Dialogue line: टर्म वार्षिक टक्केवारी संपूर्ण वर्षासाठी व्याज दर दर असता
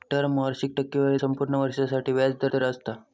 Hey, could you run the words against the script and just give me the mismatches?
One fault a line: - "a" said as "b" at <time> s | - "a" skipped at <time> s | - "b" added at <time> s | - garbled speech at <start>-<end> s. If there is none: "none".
none